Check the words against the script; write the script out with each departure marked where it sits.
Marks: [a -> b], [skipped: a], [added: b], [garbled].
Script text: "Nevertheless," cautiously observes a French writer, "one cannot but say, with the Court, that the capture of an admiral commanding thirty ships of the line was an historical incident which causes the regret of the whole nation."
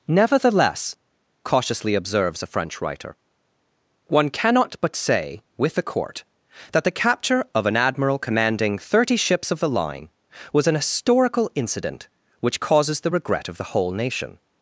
"Nevertheless," cautiously observes a French writer, "one cannot but say, with the Court, that the capture of an admiral commanding thirty ships of the line was an historical incident which causes the regret of the whole nation."